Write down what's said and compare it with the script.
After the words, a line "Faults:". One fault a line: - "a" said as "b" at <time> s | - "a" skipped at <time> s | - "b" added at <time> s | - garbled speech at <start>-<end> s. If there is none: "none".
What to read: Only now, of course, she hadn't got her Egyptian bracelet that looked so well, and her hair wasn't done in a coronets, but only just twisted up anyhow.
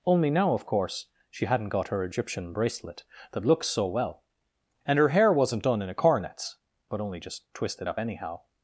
Only now, of course, she hadn't got her Egyptian bracelet that looked so well, and her hair wasn't done in a coronets, but only just twisted up anyhow.
Faults:
none